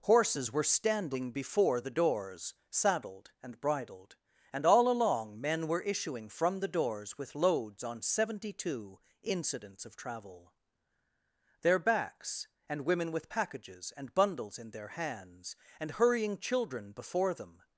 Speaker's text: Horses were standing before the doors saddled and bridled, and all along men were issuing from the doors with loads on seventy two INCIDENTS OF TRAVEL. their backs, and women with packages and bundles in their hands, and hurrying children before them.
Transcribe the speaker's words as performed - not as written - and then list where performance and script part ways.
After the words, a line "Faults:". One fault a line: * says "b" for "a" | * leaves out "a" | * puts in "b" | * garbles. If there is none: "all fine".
Horses were standing before the doors saddled and bridled, and all along men were issuing from the doors with loads on seventy two INCIDENTS OF TRAVEL. their backs, and women with packages and bundles in their hands, and hurrying children before them.
Faults:
all fine